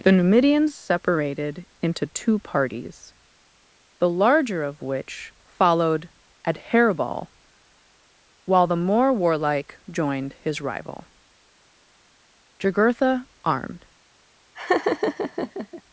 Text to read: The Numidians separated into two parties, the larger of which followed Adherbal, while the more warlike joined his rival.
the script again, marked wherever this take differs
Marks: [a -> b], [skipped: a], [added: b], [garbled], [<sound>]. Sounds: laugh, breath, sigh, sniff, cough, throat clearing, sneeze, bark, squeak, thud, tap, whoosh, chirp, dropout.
The Numidians separated into two parties, the larger of which followed Adherbal, while the more warlike joined his rival. [added: Jugurtha armed] [laugh]